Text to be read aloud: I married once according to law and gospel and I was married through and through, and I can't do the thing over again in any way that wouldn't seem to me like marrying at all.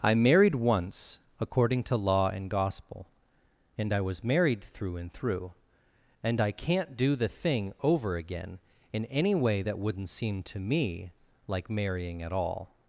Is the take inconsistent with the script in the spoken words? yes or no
no